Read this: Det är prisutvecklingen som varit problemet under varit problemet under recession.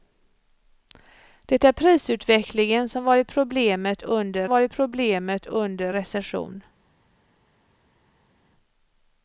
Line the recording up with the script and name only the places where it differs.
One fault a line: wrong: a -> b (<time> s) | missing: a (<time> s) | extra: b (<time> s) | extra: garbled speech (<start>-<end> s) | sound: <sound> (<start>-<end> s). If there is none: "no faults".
no faults